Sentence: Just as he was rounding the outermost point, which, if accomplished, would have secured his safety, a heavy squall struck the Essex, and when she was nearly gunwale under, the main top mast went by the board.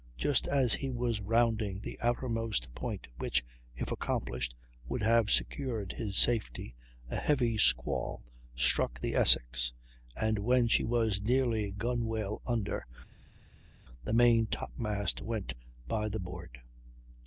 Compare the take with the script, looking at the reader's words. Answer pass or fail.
pass